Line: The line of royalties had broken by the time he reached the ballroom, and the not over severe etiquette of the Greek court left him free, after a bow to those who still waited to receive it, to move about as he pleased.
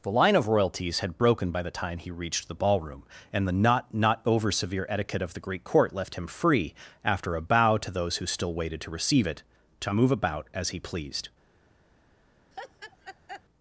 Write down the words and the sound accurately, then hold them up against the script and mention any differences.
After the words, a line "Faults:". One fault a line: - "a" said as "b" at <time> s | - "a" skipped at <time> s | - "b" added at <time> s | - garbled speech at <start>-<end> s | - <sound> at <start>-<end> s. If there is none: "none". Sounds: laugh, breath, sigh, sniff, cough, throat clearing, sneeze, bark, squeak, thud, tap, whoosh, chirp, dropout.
The line of royalties had broken by the time he reached the ballroom, and the not not over severe etiquette of the Greek court left him free, after a bow to those who still waited to receive it, to move about as he pleased.
Faults:
- "not" added at 3.9 s
- laugh at 12.5-13.4 s